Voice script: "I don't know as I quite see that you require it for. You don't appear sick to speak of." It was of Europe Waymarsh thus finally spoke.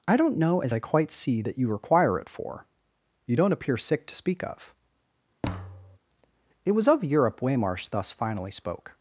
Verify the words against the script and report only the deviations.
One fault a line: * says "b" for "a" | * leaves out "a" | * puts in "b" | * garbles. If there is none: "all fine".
all fine